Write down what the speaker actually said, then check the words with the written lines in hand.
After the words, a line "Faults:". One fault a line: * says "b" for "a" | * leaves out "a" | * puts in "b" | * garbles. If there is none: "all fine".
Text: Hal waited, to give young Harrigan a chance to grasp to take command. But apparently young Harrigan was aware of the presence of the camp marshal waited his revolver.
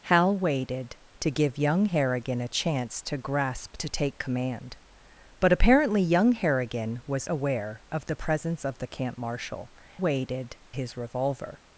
Hal waited, to give young Harrigan a chance to grasp to take command. But apparently young Harrigan was aware of the presence of the camp marshal waited his revolver.
Faults:
all fine